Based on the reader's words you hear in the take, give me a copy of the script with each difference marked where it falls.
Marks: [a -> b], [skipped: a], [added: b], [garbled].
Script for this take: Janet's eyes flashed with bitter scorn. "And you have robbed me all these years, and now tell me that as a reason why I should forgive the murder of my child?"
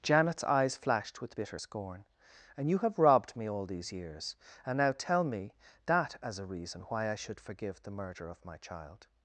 Janet's eyes flashed with bitter scorn. "And you have robbed me all these years, and now tell me that as a reason why I should forgive the murder of my child?"